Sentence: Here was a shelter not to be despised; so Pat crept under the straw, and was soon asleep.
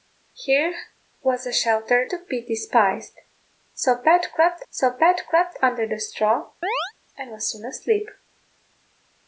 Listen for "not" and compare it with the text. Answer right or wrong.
wrong